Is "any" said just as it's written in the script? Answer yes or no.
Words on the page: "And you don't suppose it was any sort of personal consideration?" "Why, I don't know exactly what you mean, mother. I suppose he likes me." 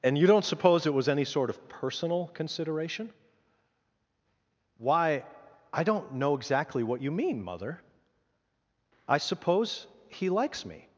yes